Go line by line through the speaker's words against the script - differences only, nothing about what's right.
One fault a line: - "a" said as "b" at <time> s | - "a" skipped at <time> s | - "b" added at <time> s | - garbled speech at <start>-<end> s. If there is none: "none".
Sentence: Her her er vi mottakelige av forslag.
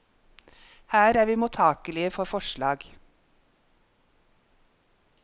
- "her" skipped at 1.1 s
- "av" said as "for" at 2.1 s